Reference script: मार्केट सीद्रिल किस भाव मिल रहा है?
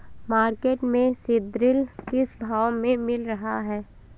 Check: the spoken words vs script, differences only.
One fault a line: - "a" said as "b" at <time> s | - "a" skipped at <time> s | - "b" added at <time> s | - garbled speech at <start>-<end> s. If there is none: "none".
- "में" added at 0.8 s
- "में" added at 2.7 s